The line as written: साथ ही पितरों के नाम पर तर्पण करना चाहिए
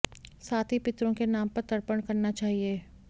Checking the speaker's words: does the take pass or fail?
pass